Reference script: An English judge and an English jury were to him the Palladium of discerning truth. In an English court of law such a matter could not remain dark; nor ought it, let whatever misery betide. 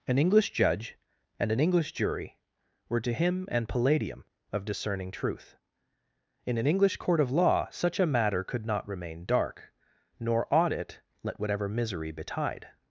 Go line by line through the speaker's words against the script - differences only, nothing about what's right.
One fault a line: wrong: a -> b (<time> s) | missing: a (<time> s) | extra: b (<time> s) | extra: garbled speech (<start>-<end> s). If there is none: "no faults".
wrong: the -> an (3.5 s)